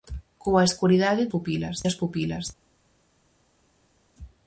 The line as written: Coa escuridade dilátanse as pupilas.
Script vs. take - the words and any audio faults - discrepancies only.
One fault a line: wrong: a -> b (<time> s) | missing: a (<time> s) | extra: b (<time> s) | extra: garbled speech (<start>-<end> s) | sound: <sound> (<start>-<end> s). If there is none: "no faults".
wrong: dilátanse -> pupilas (1.3 s)